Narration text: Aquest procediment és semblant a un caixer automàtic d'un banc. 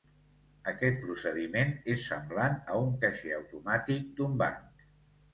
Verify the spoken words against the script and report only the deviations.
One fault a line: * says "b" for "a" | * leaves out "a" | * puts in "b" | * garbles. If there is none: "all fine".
all fine